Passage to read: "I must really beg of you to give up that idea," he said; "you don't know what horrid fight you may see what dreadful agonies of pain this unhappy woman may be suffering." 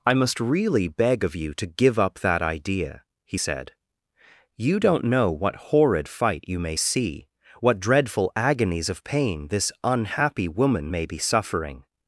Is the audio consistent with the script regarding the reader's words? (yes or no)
yes